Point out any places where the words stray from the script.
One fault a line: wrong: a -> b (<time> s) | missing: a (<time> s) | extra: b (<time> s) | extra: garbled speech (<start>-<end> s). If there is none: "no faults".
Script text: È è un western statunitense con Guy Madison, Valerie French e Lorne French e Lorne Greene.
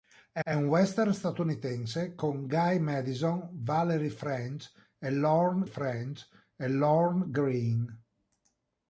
no faults